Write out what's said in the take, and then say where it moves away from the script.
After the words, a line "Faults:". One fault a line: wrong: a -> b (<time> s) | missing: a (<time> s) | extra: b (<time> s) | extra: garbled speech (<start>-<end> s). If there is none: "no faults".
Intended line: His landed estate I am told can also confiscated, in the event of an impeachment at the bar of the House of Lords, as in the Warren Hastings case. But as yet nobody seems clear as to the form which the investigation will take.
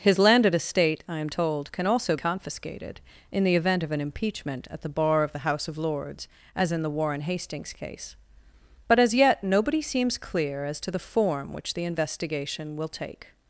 His landed estate I am told can also confiscated, in the event of an impeachment at the bar of the House of Lords, as in the Warren Hastings case. But as yet nobody seems clear as to the form which the investigation will take.
Faults:
no faults